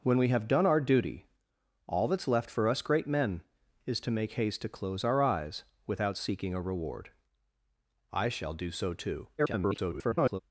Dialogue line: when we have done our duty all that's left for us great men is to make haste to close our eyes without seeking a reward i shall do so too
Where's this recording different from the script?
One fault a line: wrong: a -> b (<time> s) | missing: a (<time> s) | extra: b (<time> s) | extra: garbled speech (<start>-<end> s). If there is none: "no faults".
extra: garbled speech (9.4-10.4 s)